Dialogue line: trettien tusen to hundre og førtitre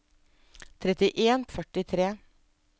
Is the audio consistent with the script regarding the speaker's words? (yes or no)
no